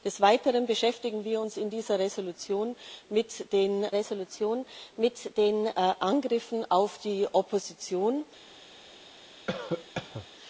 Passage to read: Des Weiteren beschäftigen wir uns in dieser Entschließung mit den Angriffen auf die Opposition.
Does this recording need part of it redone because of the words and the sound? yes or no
yes